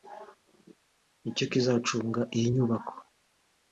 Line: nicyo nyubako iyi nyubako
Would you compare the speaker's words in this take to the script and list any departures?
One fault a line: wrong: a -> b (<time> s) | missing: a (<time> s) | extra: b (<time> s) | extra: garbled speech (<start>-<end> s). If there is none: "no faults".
wrong: nyubako -> kizacunga (1.5 s)